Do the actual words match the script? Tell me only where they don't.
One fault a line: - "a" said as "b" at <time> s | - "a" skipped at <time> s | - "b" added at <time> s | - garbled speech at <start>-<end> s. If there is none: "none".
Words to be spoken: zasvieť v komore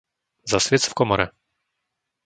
none